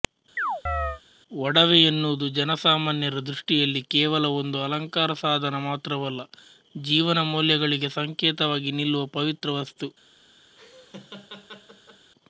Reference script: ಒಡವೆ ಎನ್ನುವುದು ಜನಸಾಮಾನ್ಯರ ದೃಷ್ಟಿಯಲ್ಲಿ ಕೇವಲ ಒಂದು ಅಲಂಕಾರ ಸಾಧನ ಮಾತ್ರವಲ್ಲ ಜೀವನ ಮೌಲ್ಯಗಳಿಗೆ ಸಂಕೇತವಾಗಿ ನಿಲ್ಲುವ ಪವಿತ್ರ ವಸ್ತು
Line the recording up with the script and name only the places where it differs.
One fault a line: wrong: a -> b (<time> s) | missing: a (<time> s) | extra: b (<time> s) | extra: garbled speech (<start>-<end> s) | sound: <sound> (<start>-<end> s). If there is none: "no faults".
sound: chirp (0.4-1.0 s)
sound: laugh (10.6-12.1 s)